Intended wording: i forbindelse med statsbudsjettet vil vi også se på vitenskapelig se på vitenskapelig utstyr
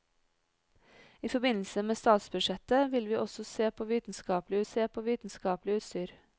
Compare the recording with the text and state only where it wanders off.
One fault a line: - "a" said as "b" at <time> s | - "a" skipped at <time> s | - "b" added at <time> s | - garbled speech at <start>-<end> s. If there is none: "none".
none